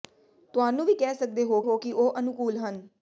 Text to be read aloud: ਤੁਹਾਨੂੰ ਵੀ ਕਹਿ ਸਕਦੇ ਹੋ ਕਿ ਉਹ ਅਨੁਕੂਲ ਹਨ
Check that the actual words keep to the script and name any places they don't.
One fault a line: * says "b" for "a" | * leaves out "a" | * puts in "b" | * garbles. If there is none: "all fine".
* puts in "ਹੋ"